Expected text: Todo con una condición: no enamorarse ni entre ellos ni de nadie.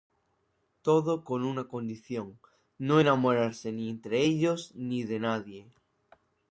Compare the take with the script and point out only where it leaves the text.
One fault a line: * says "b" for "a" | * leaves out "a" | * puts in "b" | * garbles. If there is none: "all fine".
all fine